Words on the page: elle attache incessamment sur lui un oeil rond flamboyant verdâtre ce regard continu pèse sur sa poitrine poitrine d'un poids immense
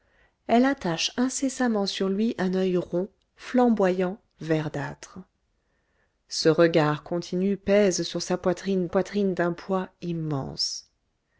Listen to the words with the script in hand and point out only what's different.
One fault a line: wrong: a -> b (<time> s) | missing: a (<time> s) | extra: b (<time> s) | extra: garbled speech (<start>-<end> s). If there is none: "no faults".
no faults